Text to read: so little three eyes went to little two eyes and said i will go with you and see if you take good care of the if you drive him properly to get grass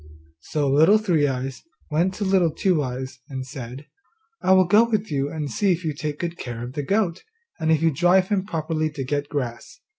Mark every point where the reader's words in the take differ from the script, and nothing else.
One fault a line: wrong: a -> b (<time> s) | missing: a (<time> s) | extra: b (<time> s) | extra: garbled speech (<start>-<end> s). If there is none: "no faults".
extra: goat and (6.8 s)